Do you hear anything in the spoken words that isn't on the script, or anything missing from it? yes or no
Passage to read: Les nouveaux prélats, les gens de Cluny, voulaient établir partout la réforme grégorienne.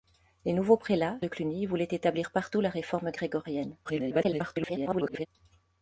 yes